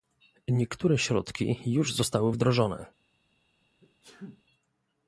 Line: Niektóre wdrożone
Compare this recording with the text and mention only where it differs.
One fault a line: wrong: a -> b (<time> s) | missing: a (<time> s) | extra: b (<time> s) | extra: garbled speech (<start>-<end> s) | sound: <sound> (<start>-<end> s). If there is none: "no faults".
extra: środki już zostały (1.0 s)
sound: sneeze (3.8-4.4 s)